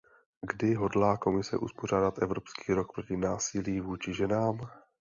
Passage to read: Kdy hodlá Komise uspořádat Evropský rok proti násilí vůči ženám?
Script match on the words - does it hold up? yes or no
yes